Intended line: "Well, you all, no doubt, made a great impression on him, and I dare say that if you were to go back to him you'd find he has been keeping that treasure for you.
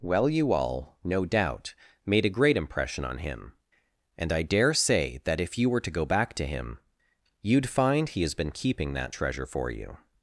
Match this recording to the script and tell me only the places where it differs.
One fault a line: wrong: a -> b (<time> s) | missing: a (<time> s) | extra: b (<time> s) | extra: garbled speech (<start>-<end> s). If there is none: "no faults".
no faults